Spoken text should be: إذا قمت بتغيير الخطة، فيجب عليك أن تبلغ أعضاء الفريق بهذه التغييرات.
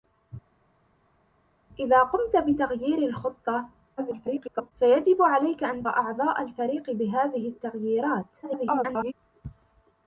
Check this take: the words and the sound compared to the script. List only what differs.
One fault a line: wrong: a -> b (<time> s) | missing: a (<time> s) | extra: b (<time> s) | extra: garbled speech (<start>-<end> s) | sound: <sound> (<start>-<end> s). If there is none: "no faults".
extra: garbled speech (4.0-4.7 s)
missing: تبلغ (5.8 s)
extra: garbled speech (8.4-9.1 s)